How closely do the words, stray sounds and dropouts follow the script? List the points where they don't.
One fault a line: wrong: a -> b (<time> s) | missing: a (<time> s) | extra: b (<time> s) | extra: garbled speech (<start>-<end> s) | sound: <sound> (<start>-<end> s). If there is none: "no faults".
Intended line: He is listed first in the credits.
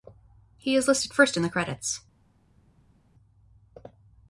no faults